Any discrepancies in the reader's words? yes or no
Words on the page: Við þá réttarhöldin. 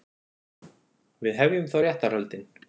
yes